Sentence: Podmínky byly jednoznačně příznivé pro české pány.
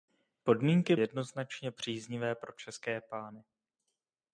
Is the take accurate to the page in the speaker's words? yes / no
no